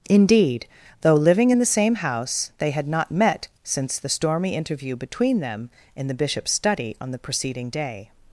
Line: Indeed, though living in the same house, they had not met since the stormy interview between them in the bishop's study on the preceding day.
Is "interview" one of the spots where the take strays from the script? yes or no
no